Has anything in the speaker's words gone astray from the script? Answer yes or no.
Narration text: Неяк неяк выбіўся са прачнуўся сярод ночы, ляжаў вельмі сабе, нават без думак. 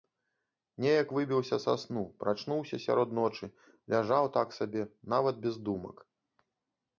yes